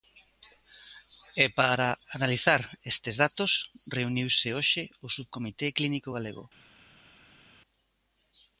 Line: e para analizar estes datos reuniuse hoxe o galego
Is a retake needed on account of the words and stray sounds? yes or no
yes